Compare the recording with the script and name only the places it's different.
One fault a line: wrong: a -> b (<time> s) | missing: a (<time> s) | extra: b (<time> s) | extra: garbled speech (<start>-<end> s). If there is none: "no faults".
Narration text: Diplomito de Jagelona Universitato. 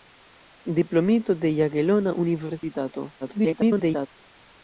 extra: garbled speech (3.2-4.1 s)